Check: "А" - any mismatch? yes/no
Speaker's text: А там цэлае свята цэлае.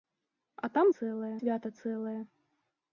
no